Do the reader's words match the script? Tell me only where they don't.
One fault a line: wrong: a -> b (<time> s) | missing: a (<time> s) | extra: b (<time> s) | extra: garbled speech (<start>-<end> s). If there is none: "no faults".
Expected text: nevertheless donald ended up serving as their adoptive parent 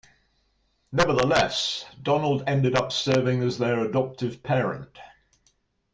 no faults